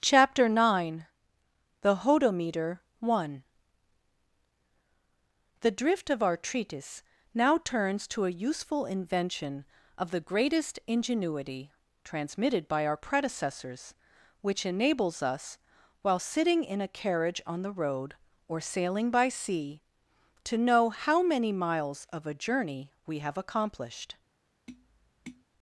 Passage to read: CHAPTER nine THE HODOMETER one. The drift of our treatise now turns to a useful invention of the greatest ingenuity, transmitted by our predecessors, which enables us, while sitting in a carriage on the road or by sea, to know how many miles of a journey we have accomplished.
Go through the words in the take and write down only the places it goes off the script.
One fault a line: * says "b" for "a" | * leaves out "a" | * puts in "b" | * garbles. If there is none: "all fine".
* puts in "sailing"